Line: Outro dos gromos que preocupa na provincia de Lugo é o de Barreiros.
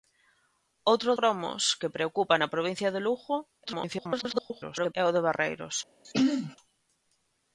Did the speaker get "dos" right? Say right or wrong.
wrong